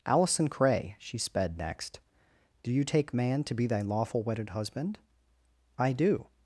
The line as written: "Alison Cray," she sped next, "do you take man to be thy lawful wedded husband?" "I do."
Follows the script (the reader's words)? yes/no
yes